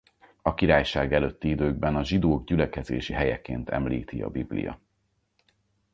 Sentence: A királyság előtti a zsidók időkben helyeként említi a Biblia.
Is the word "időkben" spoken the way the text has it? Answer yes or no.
no